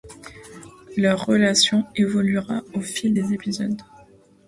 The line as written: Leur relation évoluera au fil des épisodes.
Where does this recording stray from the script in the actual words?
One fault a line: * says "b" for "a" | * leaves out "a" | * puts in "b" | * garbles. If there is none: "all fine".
all fine